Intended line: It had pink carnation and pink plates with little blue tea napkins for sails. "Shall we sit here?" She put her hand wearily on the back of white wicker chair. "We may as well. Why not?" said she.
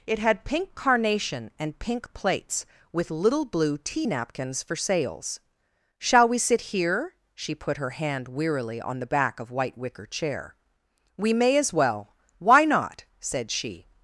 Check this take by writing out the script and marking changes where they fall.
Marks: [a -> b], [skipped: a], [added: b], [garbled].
It had pink carnation and pink plates with little blue tea napkins for sails. "Shall we sit here?" She put her hand wearily on the back of white wicker chair. "We may as well. Why not?" said she.